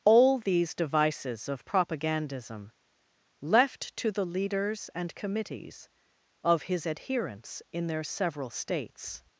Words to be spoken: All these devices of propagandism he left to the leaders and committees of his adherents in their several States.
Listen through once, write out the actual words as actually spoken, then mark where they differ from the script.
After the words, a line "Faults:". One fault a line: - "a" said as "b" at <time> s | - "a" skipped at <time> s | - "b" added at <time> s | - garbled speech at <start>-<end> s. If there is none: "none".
All these devices of propagandism left to the leaders and committees of his adherents in their several States.
Faults:
- "he" skipped at 2.7 s